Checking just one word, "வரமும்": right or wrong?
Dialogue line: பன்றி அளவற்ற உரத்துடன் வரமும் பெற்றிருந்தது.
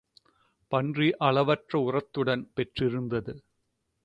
wrong